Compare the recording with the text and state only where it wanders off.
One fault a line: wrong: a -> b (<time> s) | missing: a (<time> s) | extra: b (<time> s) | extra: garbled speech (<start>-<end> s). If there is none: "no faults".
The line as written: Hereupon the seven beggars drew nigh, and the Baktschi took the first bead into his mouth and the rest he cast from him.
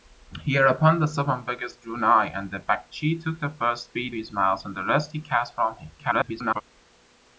missing: into (4.2 s)
extra: garbled speech (6.0-6.6 s)